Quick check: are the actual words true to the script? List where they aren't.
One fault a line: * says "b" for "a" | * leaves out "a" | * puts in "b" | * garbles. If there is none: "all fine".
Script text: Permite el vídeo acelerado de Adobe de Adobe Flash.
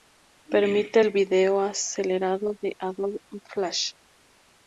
* leaves out "de Adobe"